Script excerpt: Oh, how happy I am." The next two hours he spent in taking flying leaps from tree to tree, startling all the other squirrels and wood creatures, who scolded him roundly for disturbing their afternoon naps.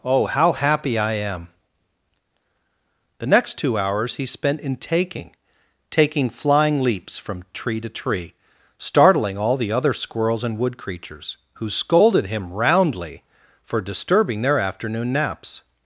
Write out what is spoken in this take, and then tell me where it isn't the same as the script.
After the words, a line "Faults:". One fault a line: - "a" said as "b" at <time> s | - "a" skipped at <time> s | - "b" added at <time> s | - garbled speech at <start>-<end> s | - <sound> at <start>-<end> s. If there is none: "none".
Oh, how happy I am." The next two hours he spent in taking taking flying leaps from tree to tree, startling all the other squirrels and wood creatures, who scolded him roundly for disturbing their afternoon naps.
Faults:
- "taking" added at 5.9 s